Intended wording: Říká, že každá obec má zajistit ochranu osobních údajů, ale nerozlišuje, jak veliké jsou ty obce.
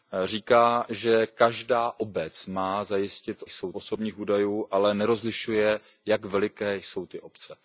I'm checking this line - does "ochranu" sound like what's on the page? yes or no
no